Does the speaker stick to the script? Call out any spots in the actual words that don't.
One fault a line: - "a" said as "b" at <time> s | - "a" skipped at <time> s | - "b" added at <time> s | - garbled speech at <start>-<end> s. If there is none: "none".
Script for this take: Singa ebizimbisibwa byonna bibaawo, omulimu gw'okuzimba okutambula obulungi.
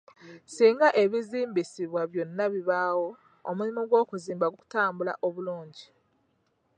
none